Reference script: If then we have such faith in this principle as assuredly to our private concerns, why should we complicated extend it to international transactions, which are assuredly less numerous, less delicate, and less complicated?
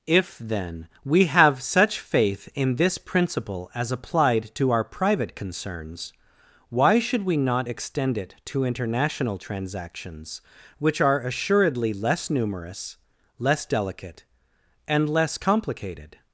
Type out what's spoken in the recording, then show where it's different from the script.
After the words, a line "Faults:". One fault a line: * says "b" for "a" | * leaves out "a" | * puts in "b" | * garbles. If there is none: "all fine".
If then we have such faith in this principle as applied to our private concerns, why should we not extend it to international transactions, which are assuredly less numerous, less delicate, and less complicated?
Faults:
* says "applied" for "assuredly"
* says "not" for "complicated"